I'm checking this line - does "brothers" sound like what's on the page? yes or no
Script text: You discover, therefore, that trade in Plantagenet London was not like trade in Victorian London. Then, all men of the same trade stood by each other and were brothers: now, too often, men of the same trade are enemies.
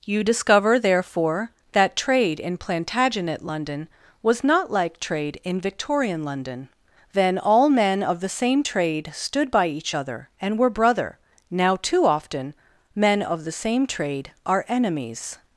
no